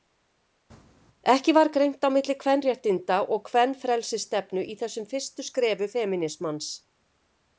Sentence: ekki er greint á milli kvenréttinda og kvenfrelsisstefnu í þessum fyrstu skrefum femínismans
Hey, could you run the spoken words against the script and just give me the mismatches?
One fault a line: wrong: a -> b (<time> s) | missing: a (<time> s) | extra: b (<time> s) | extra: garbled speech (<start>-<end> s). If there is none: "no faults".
wrong: er -> var (1.6 s)